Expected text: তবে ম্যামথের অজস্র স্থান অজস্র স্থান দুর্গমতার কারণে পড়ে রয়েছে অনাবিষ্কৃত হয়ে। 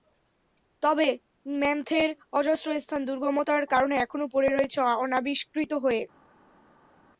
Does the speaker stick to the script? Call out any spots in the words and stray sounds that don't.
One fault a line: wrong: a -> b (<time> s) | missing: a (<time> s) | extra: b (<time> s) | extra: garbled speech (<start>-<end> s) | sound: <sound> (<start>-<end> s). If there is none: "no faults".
missing: অজস্র স্থান (3.0 s)
extra: এখনো (4.0 s)